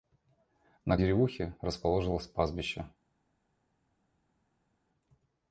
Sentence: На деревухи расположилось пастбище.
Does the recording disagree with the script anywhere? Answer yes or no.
no